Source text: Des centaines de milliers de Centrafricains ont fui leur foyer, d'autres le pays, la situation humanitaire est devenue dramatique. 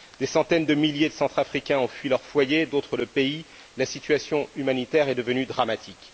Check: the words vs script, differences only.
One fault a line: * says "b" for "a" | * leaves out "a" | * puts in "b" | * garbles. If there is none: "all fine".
all fine